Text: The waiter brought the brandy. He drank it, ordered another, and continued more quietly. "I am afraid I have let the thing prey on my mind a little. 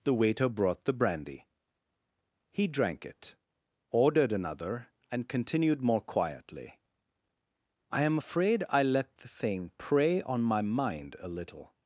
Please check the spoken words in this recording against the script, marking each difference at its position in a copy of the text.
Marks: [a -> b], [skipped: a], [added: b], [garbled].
The waiter brought the brandy. He drank it, ordered another, and continued more quietly. "I am afraid I [skipped: have] let the thing prey on my mind a little.